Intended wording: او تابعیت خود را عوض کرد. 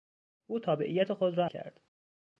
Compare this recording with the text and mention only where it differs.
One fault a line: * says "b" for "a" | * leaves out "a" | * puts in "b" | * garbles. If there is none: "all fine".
* leaves out "عوض"